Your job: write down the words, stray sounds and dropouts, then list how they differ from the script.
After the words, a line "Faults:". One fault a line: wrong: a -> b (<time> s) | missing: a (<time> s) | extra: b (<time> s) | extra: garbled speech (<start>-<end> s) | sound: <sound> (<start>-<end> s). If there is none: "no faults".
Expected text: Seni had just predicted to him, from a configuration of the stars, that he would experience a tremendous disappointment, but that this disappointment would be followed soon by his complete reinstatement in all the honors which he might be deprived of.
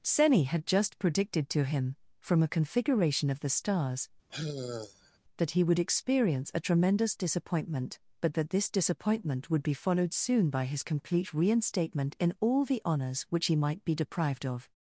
Seni had just predicted to him, from a configuration of the stars, that he would experience a tremendous disappointment, but that this disappointment would be followed soon by his complete reinstatement in all the honors which he might be deprived of.
Faults:
sound: sigh (4.3-5.2 s)